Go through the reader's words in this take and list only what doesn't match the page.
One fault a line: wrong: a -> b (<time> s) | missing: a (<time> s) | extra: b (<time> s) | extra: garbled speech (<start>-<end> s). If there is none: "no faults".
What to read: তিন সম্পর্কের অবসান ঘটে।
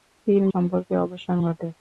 no faults